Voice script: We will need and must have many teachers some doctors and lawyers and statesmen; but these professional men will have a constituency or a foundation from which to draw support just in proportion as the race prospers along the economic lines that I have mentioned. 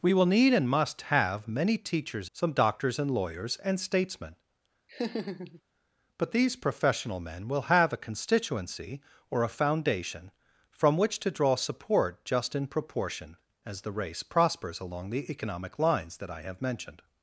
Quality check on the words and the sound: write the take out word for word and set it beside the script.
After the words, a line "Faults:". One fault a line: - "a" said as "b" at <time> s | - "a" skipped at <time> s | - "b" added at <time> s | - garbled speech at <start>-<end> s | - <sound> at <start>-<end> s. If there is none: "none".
We will need and must have many teachers some doctors and lawyers and statesmen; but these professional men will have a constituency or a foundation from which to draw support just in proportion as the race prospers along the economic lines that I have mentioned.
Faults:
- laugh at 4.9-5.6 s